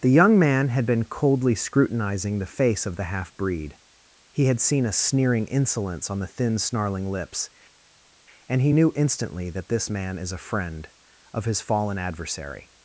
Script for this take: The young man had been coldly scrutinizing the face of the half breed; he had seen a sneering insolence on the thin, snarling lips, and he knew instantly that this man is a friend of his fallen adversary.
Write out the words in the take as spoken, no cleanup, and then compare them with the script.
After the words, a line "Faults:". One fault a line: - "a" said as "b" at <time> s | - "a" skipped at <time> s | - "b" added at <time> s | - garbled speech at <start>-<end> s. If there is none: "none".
The young man had been coldly scrutinizing the face of the half breed; he had seen a sneering insolence on the thin, snarling lips, and he knew instantly that this man is a friend of his fallen adversary.
Faults:
none